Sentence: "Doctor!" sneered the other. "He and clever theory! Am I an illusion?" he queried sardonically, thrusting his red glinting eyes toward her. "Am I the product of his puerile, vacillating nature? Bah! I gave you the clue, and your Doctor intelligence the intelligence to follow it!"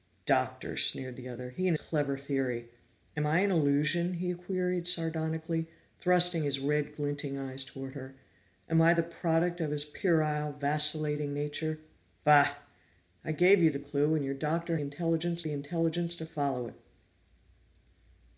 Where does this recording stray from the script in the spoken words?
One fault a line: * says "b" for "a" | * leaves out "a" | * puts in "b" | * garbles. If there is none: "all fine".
all fine